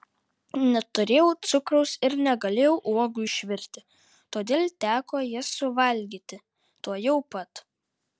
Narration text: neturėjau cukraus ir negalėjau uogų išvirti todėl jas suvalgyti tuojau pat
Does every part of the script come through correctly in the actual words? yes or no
no